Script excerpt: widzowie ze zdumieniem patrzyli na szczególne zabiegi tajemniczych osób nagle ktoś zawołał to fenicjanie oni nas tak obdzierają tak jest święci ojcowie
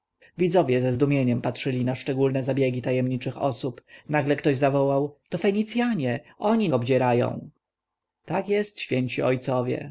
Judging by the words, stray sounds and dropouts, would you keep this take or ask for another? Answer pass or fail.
fail